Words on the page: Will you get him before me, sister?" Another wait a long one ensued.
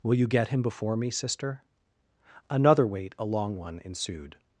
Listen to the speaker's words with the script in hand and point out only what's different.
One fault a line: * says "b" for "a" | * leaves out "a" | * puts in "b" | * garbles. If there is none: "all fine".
all fine